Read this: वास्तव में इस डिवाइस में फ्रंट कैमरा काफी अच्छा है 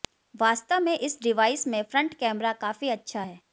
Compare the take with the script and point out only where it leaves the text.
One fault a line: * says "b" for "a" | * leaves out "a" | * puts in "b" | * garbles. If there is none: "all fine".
all fine